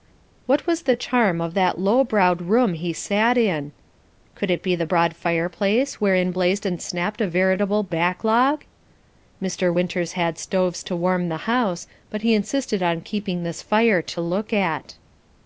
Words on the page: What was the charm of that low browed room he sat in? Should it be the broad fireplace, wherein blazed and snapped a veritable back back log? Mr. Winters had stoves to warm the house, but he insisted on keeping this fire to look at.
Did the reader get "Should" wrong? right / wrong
wrong